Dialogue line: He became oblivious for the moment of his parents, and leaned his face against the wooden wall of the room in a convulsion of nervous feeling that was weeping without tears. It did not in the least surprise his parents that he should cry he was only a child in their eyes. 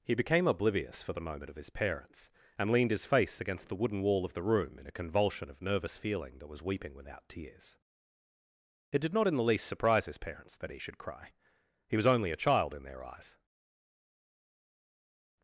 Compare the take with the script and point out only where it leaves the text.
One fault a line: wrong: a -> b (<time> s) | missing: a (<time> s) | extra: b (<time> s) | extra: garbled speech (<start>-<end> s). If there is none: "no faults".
no faults